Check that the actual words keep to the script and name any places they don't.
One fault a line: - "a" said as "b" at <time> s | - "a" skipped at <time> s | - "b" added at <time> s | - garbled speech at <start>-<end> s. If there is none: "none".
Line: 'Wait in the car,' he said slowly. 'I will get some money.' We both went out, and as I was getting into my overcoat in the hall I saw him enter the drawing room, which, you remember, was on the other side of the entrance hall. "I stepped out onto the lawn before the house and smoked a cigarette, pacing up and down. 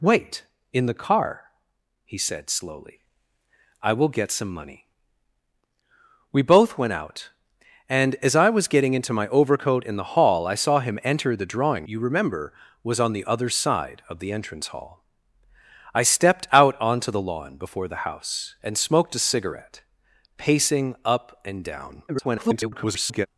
- "room which" skipped at 11.9 s
- garbled speech at 22.1-23.3 s